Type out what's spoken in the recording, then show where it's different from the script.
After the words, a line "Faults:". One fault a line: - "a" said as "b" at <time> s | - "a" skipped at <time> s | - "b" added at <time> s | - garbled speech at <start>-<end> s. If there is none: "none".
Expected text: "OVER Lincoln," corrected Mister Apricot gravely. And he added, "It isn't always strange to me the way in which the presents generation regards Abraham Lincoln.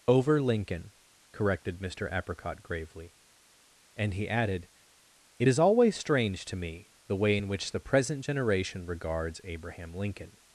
"OVER Lincoln," corrected Mister Apricot gravely. And he added, "It is always strange to me the way in which the present generation regards Abraham Lincoln.
Faults:
- "isn't" said as "is" at 5.5 s
- "presents" said as "present" at 7.8 s